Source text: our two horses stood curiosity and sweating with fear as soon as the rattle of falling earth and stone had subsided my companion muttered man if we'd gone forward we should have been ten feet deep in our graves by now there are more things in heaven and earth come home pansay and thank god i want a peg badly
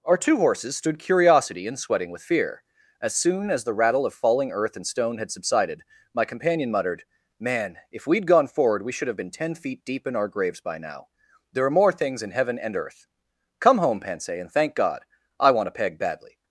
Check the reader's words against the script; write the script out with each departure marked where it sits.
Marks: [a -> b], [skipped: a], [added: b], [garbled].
our two horses stood curiosity and sweating with fear as soon as the rattle of falling earth and stone had subsided my companion muttered man if we'd gone forward we should have been ten feet deep in our graves by now there are more things in heaven and earth come home pansay and thank god i want a peg badly